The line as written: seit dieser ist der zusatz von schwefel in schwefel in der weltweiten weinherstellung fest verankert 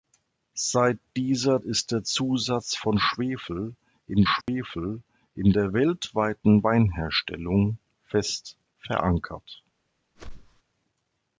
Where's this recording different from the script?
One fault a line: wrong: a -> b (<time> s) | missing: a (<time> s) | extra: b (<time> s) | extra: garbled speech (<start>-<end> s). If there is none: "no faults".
no faults